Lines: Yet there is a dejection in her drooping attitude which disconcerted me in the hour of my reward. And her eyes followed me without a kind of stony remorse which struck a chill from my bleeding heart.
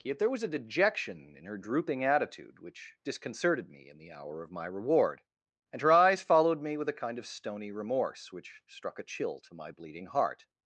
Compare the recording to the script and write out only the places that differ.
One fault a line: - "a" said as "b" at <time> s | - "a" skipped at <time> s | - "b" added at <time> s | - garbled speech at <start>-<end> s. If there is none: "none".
- "is" said as "was" at 0.3 s
- "without" said as "with" at 6.8 s
- "from" said as "to" at 9.4 s